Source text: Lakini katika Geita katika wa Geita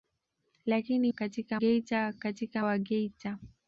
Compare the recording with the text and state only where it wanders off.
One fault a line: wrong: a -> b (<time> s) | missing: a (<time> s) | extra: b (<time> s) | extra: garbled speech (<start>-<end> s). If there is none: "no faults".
no faults